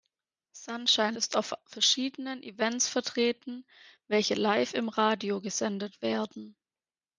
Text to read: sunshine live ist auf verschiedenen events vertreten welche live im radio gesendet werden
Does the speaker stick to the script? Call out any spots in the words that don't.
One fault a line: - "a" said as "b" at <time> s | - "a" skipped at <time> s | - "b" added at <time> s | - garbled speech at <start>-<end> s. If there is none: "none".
- "live" skipped at 1.1 s